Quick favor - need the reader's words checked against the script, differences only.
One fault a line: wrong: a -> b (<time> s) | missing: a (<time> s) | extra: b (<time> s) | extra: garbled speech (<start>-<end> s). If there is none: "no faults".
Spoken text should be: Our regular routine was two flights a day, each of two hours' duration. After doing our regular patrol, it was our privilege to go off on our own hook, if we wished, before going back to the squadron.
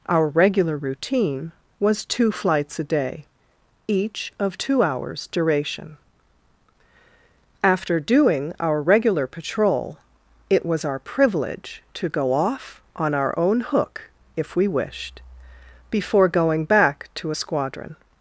wrong: the -> a (17.3 s)